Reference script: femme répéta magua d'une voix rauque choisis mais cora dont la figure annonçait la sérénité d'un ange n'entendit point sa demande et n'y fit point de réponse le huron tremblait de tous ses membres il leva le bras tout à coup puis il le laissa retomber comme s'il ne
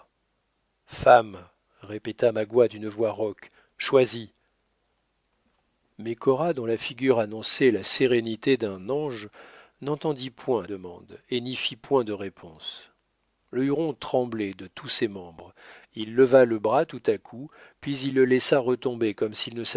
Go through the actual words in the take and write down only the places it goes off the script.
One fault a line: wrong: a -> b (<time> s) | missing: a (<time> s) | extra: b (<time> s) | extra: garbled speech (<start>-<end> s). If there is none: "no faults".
missing: sa (10.7 s)